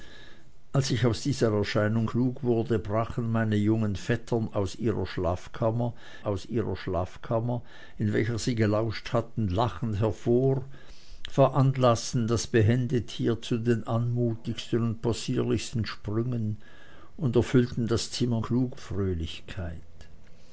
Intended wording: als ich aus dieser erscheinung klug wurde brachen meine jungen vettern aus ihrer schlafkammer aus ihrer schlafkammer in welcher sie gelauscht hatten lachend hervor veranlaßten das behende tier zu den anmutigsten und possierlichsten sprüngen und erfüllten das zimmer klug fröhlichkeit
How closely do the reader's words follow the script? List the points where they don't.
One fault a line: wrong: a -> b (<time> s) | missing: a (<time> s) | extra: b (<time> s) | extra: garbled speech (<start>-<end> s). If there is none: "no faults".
no faults